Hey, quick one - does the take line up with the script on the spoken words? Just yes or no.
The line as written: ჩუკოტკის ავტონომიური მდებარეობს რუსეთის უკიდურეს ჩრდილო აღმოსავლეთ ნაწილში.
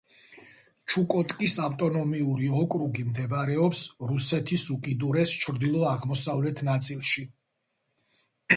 no